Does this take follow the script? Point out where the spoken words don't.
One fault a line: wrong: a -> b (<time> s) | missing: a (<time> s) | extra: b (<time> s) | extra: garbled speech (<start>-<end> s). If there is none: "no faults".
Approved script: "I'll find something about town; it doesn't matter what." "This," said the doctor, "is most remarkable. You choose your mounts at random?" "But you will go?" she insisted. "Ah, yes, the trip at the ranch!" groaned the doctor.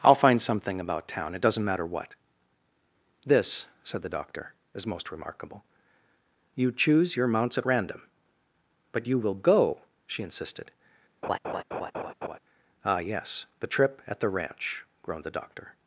no faults